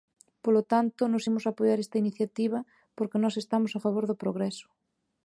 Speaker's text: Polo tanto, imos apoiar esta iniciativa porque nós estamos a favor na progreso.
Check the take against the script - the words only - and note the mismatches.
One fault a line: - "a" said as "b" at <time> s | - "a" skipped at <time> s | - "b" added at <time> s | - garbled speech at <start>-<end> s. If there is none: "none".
- "nós" added at 1.1 s
- "na" said as "do" at 4.1 s